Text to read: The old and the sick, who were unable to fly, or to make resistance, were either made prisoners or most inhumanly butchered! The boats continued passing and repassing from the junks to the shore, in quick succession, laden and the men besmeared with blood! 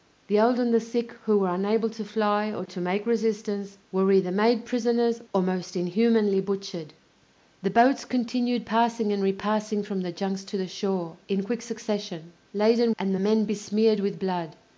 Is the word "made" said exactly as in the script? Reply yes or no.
yes